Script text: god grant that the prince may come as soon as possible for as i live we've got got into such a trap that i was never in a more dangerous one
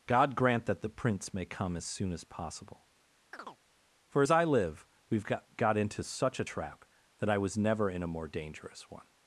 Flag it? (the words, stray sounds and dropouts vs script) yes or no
yes